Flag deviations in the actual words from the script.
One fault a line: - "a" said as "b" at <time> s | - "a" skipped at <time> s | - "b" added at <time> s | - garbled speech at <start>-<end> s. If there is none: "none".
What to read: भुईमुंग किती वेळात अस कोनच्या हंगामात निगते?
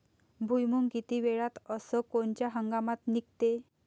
none